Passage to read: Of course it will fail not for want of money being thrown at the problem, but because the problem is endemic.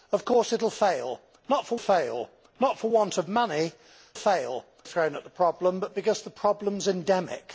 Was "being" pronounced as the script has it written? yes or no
no